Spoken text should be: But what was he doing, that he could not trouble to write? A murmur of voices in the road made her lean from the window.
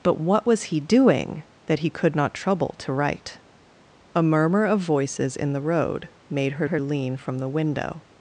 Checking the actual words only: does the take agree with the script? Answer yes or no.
no